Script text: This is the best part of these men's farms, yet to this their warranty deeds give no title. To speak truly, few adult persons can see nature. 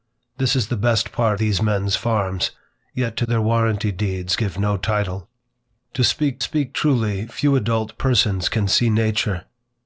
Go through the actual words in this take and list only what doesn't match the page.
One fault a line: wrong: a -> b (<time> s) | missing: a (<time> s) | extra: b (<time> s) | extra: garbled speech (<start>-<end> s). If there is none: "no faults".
missing: of (1.4 s)
missing: this (3.2 s)
extra: speak (6.4 s)